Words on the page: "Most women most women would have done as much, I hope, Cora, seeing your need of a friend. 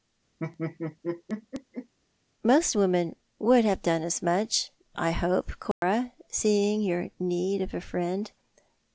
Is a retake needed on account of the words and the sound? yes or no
yes